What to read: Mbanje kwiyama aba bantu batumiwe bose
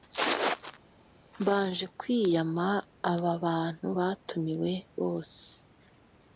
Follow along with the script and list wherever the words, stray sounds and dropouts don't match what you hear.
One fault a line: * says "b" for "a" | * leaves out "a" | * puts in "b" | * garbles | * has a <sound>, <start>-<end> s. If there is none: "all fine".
all fine